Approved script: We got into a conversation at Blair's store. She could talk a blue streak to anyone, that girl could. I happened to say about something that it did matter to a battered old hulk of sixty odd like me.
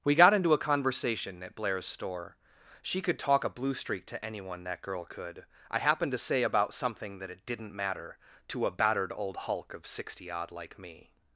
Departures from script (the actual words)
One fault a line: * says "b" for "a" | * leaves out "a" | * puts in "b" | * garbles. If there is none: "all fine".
* says "didn't" for "did"